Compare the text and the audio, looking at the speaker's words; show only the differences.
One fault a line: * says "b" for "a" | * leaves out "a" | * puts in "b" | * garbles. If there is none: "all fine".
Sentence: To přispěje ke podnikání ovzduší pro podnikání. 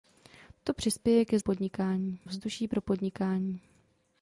all fine